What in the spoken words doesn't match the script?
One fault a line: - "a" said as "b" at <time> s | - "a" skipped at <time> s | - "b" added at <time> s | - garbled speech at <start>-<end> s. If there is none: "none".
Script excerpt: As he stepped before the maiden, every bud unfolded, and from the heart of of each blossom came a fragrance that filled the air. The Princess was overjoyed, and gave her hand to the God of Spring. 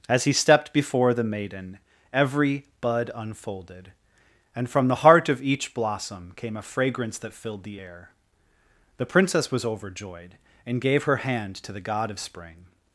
- "of" skipped at 5.4 s